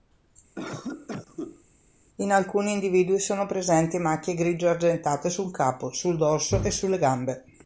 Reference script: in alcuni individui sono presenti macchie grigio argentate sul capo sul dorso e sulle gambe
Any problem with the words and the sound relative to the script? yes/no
yes